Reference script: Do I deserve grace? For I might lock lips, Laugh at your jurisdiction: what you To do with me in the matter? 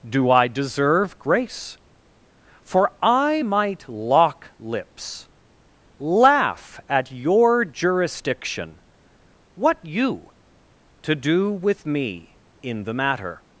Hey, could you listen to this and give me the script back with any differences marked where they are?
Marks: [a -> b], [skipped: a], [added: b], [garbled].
Do I deserve grace? For I might lock lips, Laugh at your jurisdiction: what you To do with me in the matter?